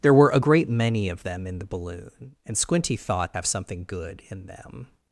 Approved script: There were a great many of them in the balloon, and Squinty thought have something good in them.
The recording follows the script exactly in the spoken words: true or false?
true